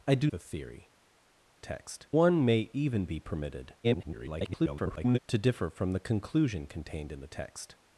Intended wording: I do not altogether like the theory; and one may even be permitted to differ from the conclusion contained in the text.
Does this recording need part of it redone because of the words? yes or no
yes